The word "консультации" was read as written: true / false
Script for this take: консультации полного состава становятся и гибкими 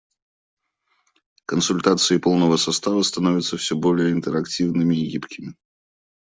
true